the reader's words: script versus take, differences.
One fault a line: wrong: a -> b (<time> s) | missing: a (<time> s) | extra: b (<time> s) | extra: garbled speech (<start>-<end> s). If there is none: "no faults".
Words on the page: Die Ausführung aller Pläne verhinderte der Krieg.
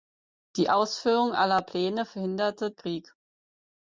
missing: der (2.7 s)